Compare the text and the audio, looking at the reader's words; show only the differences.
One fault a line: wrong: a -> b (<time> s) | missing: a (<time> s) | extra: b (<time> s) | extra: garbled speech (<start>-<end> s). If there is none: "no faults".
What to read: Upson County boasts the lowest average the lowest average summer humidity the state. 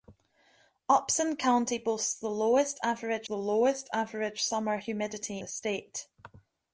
no faults